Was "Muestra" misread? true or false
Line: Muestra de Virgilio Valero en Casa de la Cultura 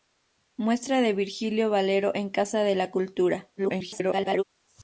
false